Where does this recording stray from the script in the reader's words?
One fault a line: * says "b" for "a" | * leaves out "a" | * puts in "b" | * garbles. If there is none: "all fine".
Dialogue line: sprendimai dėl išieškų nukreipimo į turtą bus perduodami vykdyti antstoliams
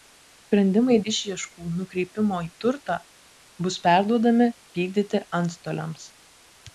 * leaves out "dėl"